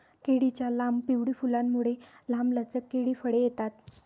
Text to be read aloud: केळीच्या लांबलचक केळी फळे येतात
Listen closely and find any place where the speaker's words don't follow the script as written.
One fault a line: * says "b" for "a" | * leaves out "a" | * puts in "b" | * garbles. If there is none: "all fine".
* puts in "लांब पिवळी फुलांमुळे"